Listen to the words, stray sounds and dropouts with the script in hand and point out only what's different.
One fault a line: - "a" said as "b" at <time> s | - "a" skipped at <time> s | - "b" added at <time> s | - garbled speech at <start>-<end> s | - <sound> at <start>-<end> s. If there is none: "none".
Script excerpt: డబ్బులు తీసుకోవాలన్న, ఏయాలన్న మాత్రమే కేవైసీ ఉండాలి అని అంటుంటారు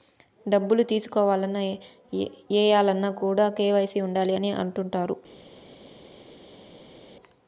- "మాత్రమే" said as "కూడా" at 3.2 s